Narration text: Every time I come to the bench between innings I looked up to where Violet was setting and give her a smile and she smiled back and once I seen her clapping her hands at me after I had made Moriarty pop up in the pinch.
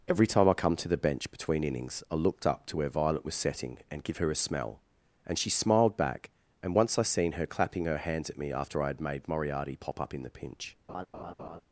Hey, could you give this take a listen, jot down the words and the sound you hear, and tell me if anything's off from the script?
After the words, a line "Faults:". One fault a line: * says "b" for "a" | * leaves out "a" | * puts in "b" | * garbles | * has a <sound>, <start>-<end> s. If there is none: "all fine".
Every time I come to the bench between innings I looked up to where Violet was setting and give her a smell and she smiled back and once I seen her clapping her hands at me after I had made Moriarty pop up in the pinch.
Faults:
* says "smell" for "smile"
* has a laugh, 10.9-11.6 s